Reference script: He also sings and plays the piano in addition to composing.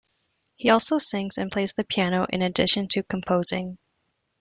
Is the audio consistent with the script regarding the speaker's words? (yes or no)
yes